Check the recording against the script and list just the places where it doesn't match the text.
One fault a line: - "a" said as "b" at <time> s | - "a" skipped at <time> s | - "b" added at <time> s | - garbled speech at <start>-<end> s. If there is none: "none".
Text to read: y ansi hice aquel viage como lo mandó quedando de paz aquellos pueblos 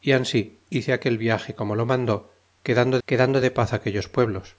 - "quedando" added at 3.1 s